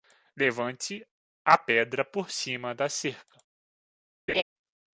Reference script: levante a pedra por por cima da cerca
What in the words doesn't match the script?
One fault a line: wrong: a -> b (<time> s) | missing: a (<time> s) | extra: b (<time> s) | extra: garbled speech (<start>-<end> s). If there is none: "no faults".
missing: por (2.3 s)